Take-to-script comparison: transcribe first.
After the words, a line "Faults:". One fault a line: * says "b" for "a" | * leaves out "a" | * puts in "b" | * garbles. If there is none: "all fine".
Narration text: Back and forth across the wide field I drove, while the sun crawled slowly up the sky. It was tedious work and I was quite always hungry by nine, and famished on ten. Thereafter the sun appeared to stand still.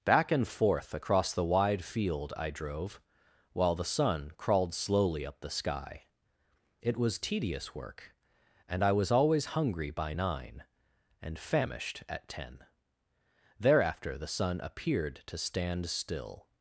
Back and forth across the wide field I drove, while the sun crawled slowly up the sky. It was tedious work and I was always hungry by nine, and famished at ten. Thereafter the sun appeared to stand still.
Faults:
* leaves out "quite"
* says "at" for "on"